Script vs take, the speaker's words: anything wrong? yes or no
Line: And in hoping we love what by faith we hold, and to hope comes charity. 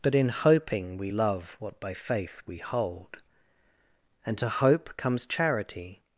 yes